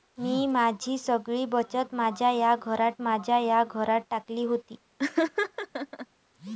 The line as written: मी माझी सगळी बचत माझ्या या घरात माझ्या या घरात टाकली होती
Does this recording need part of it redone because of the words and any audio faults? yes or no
yes